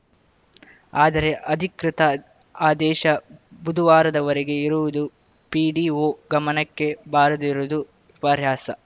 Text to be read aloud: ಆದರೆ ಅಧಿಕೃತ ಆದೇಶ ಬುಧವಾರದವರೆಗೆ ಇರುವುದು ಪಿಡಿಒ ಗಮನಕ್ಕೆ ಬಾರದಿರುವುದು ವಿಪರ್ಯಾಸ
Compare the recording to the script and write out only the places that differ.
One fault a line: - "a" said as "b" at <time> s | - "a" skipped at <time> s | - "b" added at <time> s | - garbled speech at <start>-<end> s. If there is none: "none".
none